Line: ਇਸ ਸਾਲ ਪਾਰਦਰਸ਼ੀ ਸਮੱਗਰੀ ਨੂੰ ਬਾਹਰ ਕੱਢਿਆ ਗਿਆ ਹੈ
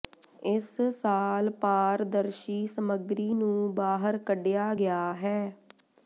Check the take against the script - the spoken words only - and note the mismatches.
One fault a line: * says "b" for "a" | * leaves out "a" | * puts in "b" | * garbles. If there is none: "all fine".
all fine